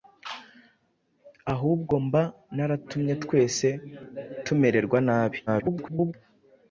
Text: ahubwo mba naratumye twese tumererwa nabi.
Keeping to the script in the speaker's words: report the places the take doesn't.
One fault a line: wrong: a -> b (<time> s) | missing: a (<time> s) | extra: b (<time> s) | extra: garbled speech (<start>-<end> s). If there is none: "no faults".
extra: garbled speech (5.5-6.1 s)